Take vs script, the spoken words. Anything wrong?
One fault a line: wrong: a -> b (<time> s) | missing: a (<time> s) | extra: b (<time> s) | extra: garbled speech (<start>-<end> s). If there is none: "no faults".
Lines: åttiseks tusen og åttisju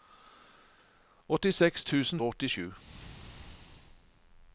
no faults